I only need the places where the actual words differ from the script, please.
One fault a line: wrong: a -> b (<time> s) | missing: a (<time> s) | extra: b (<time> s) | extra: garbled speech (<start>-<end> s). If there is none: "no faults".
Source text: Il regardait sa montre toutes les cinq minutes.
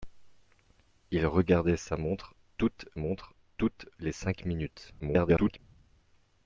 extra: montre toutes (2.9 s)
extra: garbled speech (5.0-5.6 s)